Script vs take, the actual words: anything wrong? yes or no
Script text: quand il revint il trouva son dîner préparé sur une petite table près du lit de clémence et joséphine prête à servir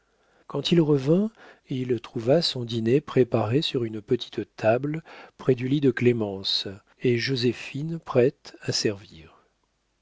no